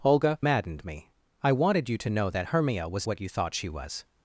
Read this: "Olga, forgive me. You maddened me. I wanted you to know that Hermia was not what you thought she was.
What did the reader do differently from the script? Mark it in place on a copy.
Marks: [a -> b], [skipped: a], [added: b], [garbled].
"Olga, [skipped: forgive me. You] maddened me. I wanted you to know that Hermia was [skipped: not] what you thought she was.